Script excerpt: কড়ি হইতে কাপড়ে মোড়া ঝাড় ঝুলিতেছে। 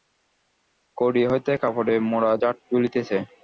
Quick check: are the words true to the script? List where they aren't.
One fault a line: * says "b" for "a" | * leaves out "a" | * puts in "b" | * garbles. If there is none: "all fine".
all fine